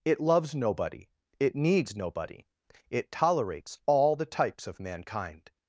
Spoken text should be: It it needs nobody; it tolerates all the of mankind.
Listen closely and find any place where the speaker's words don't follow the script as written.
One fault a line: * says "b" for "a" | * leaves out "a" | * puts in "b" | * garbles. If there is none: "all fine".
* puts in "loves nobody"
* puts in "types"